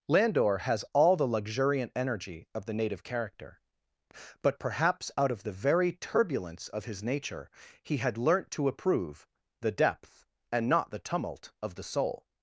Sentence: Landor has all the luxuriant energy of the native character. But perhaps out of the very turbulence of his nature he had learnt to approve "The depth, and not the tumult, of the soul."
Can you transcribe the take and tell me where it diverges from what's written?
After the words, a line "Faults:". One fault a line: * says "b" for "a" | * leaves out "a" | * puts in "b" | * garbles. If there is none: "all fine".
Landor has all the luxuriant energy of the native character. But perhaps out of the very turbulence of his nature he had learnt to approve "The depth, and not the tumult, of the soul."
Faults:
all fine